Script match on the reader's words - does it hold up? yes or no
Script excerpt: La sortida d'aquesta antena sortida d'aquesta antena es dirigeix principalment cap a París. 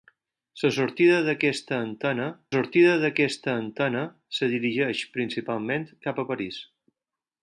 yes